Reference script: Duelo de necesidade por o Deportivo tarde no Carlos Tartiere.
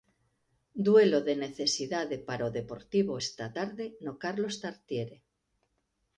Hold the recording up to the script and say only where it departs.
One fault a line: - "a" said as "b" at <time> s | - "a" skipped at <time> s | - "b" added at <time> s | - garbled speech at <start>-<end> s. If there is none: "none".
- "por" said as "para" at 2.3 s
- "esta" added at 3.2 s